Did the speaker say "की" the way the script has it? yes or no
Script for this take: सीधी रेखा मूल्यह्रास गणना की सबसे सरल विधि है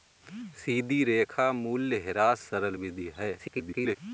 no